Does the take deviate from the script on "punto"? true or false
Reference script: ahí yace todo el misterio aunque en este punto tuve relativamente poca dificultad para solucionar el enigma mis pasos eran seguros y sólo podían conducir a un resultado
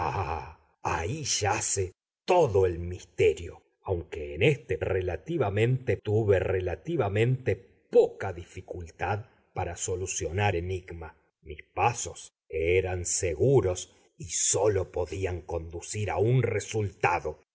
true